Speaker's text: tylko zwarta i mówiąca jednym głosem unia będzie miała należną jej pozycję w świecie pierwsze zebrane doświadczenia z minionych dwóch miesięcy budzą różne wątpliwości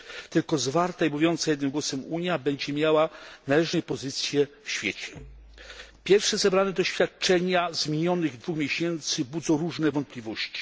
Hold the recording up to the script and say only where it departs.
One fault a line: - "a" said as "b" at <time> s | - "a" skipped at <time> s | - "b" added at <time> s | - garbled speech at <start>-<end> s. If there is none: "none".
none